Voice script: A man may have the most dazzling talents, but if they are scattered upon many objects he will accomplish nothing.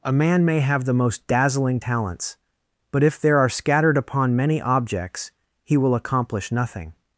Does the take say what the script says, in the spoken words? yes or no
no